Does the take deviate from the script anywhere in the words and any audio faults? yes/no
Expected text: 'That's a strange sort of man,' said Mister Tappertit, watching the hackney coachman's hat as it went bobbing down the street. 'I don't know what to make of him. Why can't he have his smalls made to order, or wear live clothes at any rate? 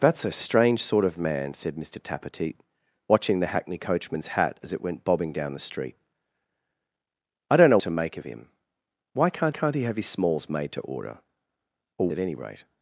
yes